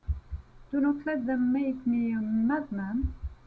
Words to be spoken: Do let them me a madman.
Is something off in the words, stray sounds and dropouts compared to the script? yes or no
yes